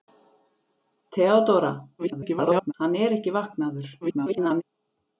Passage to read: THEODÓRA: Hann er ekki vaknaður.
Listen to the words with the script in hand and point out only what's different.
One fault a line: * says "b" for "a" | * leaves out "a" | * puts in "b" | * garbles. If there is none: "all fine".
* garbles
* garbles